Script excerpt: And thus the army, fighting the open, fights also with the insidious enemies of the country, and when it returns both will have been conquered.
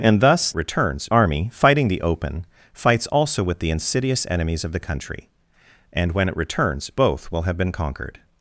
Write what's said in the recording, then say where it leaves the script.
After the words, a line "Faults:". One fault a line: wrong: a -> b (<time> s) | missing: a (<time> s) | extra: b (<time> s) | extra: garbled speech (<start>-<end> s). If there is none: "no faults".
And thus returns army, fighting the open, fights also with the insidious enemies of the country, and when it returns both will have been conquered.
Faults:
wrong: the -> returns (0.5 s)